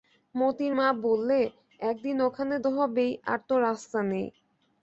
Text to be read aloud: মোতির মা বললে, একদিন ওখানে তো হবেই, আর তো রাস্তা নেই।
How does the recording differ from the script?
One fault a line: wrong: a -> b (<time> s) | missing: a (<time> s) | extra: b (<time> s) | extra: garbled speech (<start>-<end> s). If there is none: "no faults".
no faults